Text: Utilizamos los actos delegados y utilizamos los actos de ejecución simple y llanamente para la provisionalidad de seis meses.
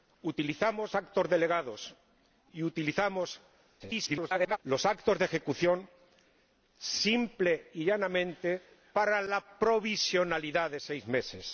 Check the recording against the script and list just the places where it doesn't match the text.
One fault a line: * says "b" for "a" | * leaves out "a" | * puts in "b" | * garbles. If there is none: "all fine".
* leaves out "los"
* garbles